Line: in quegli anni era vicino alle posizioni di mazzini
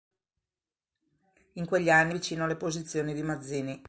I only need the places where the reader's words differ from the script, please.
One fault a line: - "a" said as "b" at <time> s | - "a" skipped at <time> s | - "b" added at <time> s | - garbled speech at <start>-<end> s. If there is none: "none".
- "era" skipped at 2.1 s